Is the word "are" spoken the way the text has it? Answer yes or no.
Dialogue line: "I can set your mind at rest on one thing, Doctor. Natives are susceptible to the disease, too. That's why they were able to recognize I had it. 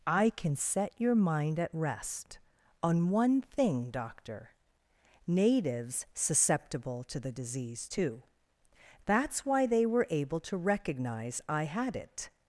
no